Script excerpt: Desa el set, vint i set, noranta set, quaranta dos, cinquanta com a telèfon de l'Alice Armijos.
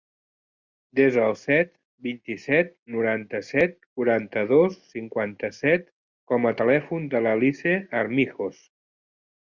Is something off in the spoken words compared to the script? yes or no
yes